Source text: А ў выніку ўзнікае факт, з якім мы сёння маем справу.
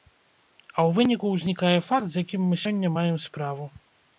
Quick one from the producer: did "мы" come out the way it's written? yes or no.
yes